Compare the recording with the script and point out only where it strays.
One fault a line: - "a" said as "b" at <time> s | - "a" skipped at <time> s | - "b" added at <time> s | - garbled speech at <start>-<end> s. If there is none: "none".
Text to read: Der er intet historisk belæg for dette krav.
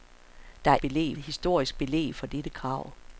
- "intet" said as "belæg" at 0.8 s